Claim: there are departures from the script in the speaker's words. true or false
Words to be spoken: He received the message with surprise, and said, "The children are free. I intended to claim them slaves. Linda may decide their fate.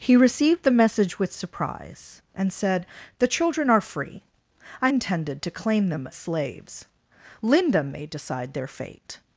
false